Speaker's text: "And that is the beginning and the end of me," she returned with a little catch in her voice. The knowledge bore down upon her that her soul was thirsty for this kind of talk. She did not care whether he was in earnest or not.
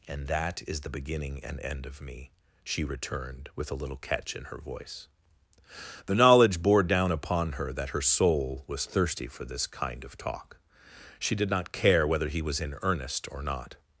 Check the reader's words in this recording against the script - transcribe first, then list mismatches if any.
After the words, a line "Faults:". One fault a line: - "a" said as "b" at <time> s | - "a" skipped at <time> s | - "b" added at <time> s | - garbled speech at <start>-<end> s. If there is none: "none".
"And that is the beginning and end of me," she returned with a little catch in her voice. The knowledge bore down upon her that her soul was thirsty for this kind of talk. She did not care whether he was in earnest or not.
Faults:
- "the" skipped at 1.6 s